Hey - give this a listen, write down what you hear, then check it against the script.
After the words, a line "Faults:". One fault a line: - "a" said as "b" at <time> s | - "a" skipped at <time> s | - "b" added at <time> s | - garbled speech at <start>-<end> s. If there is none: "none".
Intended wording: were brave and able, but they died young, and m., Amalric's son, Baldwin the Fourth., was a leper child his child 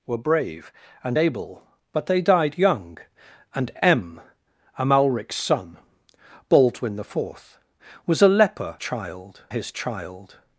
were brave and able, but they died young, and m., Amalric's son, Baldwin the Fourth., was a leper child his child
Faults:
none